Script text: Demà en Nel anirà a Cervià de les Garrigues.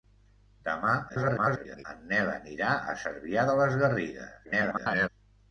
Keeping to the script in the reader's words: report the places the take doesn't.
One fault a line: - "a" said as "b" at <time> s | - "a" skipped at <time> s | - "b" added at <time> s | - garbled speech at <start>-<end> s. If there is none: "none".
- garbled speech at 1.1-1.8 s
- garbled speech at 4.4-5.1 s